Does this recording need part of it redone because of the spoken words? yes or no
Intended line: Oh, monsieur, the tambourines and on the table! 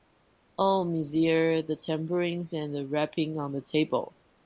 yes